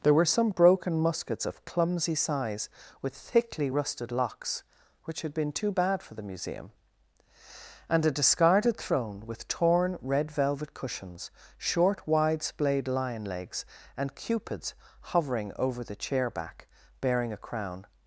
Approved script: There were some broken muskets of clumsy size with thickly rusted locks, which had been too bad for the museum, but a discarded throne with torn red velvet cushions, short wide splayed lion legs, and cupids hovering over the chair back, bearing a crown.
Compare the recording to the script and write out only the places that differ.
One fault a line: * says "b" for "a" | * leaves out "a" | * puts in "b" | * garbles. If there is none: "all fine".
* says "and" for "but"